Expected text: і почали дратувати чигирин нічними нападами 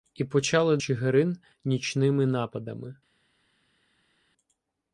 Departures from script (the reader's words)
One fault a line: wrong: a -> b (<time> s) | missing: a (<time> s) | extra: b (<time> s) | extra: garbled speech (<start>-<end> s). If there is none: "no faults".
missing: дратувати (0.8 s)